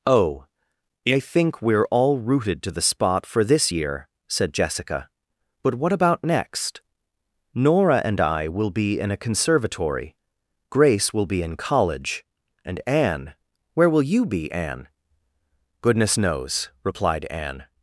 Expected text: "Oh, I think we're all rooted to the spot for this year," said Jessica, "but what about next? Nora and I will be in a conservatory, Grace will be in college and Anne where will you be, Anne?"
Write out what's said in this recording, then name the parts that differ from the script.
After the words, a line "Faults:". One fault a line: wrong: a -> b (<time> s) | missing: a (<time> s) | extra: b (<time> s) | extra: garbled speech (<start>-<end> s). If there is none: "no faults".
"Oh, I think we're all rooted to the spot for this year," said Jessica, "but what about next? Nora and I will be in a conservatory, Grace will be in college and Anne where will you be, Anne?" "Goodness knows," replied Anne
Faults:
extra: Goodness knows replied Anne (15.8 s)